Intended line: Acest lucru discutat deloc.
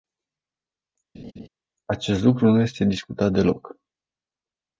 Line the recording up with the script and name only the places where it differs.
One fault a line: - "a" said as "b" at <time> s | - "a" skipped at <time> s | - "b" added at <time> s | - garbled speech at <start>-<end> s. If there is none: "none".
- "nu este" added at 2.5 s